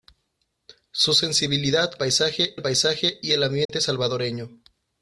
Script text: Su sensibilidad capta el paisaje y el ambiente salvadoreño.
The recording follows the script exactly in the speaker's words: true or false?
false